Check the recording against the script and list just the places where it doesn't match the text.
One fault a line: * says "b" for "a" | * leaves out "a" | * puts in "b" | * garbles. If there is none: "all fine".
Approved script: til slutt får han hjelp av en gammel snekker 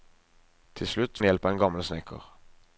* leaves out "får"